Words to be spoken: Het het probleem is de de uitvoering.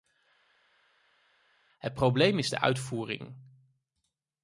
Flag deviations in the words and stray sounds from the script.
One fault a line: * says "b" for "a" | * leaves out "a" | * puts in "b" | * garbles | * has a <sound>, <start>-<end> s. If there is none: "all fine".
* leaves out "het"
* leaves out "de"